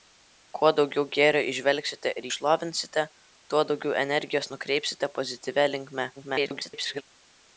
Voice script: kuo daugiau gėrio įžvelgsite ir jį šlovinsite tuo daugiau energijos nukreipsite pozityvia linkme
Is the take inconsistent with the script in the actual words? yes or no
yes